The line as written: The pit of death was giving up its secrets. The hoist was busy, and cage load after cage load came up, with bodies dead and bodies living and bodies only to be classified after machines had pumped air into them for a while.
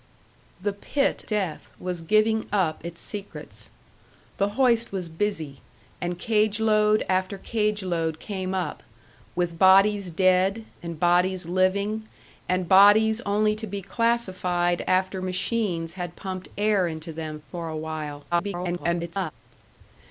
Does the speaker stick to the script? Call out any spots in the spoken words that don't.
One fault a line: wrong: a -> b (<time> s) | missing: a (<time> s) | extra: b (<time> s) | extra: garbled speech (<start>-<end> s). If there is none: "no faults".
missing: of (1.2 s)
extra: garbled speech (18.3-19.3 s)